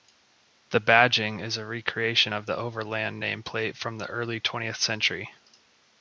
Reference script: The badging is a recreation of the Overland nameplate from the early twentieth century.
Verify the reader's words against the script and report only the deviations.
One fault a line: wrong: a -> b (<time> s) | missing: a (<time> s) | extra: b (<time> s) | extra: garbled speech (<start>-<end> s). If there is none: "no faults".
no faults